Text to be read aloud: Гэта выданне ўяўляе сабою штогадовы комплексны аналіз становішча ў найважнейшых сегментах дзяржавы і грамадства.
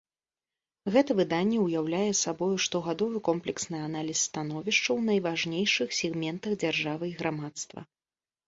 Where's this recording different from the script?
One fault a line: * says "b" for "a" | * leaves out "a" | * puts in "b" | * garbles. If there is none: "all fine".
all fine